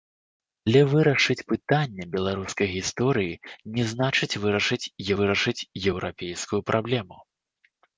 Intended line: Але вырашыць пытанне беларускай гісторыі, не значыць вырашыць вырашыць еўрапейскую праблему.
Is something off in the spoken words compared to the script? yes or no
no